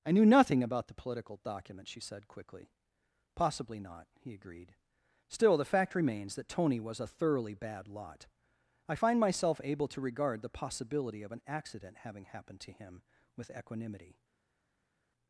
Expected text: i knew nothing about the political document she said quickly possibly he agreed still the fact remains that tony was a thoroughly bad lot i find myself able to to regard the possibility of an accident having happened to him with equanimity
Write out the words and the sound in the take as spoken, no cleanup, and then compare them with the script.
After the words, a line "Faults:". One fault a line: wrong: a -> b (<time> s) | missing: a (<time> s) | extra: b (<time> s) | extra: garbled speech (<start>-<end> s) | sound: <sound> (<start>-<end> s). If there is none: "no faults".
i knew nothing about the political document she said quickly possibly not he agreed still the fact remains that tony was a thoroughly bad lot i find myself able to regard the possibility of an accident having happened to him with equanimity
Faults:
extra: not (3.8 s)
missing: to (10.0 s)